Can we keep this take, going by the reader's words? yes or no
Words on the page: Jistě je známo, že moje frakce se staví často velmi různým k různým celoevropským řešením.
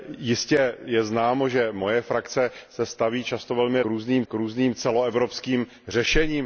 yes